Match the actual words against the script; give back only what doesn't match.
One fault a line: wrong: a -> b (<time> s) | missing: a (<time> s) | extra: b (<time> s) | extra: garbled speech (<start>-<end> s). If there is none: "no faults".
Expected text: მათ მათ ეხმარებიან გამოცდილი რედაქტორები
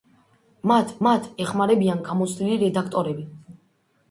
no faults